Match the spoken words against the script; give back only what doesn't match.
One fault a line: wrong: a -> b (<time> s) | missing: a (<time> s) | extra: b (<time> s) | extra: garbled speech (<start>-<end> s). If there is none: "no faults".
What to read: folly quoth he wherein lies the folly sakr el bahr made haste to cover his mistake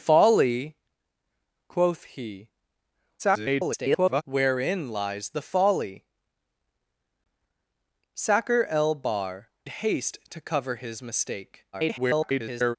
extra: garbled speech (3.2-4.2 s)
missing: made (9.5 s)
extra: garbled speech (11.7-12.8 s)